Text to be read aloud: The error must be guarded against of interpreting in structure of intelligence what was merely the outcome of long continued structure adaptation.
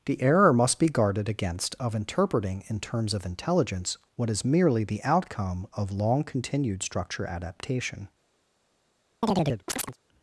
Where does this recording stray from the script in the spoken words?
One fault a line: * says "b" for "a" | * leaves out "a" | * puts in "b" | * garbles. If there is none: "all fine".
* says "terms" for "structure"
* says "is" for "was"